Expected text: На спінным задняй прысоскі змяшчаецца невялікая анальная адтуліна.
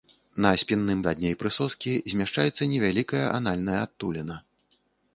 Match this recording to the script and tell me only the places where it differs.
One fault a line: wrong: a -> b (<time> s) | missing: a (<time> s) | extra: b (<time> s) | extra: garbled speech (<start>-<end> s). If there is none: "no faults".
no faults